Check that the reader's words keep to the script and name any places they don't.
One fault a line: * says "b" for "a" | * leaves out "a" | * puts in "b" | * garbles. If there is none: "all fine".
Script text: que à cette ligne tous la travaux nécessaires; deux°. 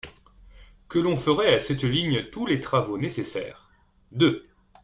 * puts in "l'on ferait"
* says "les" for "la"